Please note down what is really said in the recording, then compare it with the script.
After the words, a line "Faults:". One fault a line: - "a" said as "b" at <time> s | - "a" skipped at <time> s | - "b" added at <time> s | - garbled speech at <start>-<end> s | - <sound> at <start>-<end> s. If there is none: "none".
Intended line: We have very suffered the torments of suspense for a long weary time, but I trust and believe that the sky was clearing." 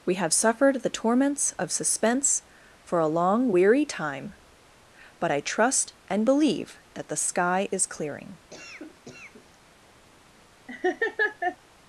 We have suffered the torments of suspense for a long weary time, but I trust and believe that the sky is clearing."
Faults:
- "very" skipped at 0.3 s
- "was" said as "is" at 7.7 s
- cough at 8.5-9.6 s
- laugh at 10.7-11.6 s